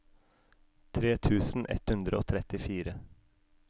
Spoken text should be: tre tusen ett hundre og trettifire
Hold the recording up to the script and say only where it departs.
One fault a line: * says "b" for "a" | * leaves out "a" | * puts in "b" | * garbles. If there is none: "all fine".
all fine